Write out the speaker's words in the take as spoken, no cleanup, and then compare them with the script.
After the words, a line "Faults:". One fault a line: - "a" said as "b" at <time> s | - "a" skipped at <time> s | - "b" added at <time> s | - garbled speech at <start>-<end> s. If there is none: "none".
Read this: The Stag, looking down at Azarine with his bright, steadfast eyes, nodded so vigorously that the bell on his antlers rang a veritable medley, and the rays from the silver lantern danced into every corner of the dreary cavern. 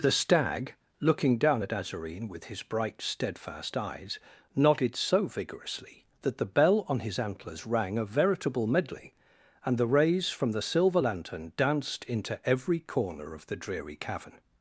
The Stag, looking down at Azarine with his bright, steadfast eyes, nodded so vigorously that the bell on his antlers rang a veritable medley, and the rays from the silver lantern danced into every corner of the dreary cavern.
Faults:
none